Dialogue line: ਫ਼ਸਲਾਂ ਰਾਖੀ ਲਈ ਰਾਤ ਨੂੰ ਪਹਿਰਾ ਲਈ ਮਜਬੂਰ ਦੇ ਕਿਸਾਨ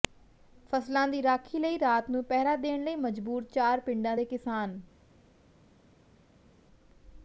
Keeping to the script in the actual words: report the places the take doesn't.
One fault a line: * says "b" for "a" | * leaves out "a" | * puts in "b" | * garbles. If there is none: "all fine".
* puts in "ਦੀ"
* puts in "ਦੇਣ"
* puts in "ਚਾਰ ਪਿੰਡਾਂ"